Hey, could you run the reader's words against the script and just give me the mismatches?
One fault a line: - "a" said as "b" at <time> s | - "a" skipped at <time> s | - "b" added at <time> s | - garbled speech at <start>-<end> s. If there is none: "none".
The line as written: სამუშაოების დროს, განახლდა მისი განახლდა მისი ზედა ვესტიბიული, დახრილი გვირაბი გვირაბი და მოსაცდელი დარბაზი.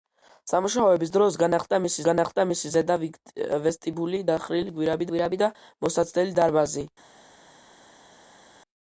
none